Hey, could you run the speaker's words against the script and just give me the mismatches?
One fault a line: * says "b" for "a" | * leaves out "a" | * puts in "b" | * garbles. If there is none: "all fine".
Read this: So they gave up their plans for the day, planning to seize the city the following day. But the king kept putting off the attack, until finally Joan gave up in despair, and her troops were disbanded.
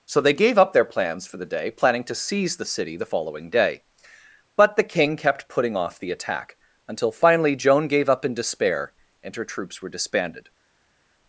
all fine